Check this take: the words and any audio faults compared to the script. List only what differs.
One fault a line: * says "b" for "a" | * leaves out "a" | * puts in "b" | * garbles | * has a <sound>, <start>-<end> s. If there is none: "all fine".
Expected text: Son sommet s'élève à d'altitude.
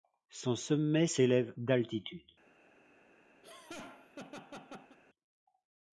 * leaves out "à"
* has a laugh, 3.4-5.0 s